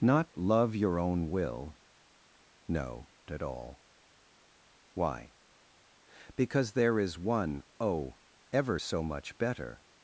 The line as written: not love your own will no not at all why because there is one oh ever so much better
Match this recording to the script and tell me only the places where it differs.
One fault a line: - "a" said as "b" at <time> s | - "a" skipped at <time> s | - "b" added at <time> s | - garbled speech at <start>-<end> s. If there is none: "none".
- "not" skipped at 3.1 s